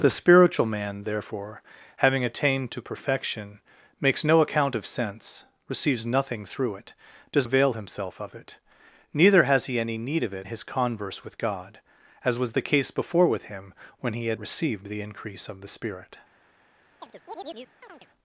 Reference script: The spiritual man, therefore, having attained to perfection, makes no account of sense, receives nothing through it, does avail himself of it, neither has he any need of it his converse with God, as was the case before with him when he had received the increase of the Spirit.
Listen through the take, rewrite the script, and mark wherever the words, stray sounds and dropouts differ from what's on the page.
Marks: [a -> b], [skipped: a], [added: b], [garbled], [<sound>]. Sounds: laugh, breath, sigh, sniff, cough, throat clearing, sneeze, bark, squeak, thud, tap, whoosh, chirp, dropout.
The spiritual man, therefore, having attained to perfection, makes no account of sense, receives nothing through it, does avail himself of it, neither has he any need of it his converse with God, as was the case before with him when he had received the increase of the Spirit. [chirp]